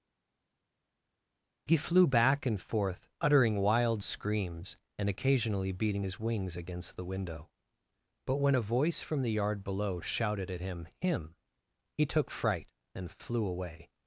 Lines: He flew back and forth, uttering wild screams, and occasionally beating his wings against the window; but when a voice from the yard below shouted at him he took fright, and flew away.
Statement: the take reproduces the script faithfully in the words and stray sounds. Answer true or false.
false